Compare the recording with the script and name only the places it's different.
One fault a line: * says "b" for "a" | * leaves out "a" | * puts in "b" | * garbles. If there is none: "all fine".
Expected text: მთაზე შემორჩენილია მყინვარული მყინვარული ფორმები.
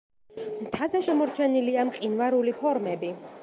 * leaves out "მყინვარული"